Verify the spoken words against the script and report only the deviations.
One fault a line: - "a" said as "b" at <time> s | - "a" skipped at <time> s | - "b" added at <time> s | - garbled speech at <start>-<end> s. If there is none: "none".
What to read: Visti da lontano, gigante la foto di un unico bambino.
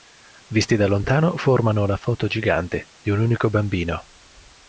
- "gigante" said as "formano" at 1.4 s
- "gigante" added at 2.2 s